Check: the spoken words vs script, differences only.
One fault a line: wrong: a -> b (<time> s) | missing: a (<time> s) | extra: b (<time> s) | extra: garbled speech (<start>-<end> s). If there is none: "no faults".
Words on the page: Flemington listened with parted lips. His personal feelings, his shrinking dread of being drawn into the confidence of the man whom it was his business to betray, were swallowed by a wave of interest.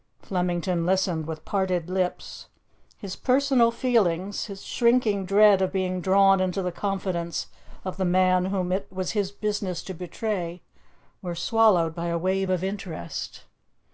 no faults